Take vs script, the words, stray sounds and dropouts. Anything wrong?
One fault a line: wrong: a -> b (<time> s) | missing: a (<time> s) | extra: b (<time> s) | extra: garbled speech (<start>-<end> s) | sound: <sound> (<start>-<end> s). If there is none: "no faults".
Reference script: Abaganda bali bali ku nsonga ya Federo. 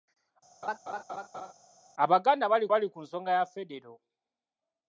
sound: laugh (0.6-1.5 s)